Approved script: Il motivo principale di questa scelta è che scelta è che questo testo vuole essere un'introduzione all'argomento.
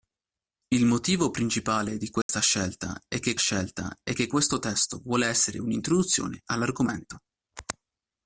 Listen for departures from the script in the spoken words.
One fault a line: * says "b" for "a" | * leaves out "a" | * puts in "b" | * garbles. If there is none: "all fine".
all fine